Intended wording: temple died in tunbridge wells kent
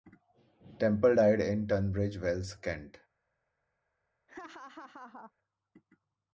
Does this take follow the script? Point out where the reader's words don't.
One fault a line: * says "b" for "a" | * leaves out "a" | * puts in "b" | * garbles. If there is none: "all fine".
all fine